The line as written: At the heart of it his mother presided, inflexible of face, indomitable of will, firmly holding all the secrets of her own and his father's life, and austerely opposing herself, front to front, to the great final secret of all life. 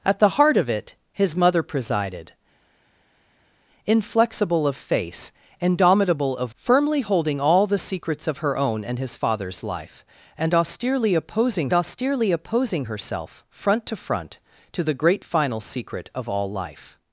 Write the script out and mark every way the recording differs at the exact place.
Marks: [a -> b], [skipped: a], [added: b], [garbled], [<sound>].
At the heart of it his mother presided, inflexible of face, indomitable of [skipped: will,] firmly holding all the secrets of her own and his father's life, and austerely opposing [added: austerely opposing] herself, front to front, to the great final secret of all life.